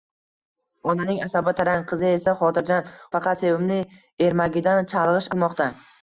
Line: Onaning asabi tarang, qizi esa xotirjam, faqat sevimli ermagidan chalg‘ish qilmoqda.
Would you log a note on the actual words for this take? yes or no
no